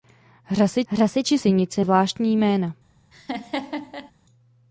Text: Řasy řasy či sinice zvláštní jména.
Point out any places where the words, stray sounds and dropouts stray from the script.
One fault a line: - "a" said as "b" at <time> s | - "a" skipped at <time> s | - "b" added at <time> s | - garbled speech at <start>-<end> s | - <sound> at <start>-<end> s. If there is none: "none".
- laugh at 3.1-4.1 s